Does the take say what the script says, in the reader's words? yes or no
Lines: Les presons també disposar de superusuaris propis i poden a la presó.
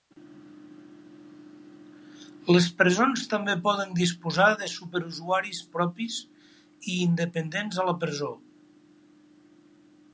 no